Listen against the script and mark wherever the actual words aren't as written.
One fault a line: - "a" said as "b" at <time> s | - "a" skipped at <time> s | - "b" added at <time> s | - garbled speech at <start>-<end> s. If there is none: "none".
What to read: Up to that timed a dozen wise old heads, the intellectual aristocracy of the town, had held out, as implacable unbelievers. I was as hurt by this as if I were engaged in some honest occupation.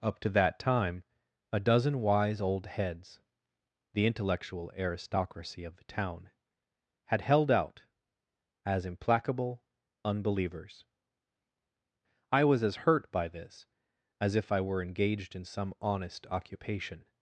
- "timed" said as "time" at 0.6 s